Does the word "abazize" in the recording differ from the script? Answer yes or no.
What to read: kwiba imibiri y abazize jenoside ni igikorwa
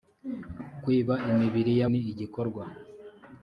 yes